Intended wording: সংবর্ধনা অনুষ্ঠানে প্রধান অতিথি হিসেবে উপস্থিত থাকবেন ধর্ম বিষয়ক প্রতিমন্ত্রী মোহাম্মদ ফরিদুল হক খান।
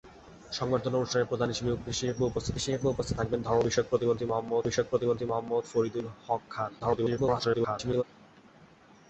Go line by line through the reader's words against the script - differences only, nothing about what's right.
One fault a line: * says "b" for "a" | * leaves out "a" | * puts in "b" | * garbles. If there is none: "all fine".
* puts in "হিসেবে উপস্থিত"
* puts in "বিষয়ক প্রতিমন্ত্রী মোহাম্মদ"
* garbles